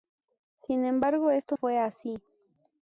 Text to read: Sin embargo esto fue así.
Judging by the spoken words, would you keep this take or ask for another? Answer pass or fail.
pass